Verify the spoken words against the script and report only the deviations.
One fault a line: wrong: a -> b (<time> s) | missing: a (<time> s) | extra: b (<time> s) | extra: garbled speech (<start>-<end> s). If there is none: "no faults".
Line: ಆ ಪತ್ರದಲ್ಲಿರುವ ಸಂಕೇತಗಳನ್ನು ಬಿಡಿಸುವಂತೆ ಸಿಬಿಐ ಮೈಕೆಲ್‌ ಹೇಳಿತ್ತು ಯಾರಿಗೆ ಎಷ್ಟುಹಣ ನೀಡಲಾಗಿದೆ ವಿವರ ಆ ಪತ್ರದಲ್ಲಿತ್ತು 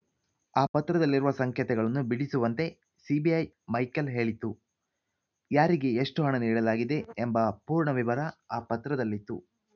extra: ಎಂಬ ಪೂರ್ಣ (7.2 s)